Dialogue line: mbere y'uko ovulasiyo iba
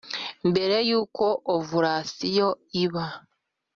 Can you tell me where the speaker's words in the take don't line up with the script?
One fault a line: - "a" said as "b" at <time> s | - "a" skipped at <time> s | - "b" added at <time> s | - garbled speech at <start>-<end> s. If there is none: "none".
none